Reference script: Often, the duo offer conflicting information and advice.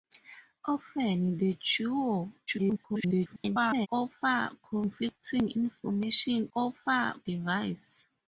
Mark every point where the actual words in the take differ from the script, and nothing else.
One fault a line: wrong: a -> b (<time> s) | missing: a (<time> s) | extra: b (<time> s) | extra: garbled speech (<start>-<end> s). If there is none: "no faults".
extra: garbled speech (2.5-3.9 s)
wrong: and -> offer (6.5 s)